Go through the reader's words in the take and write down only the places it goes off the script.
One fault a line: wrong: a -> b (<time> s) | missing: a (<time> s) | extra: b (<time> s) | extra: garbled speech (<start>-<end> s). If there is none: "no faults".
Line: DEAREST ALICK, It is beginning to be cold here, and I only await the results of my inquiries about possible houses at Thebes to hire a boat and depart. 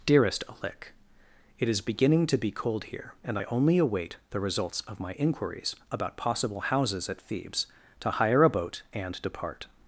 no faults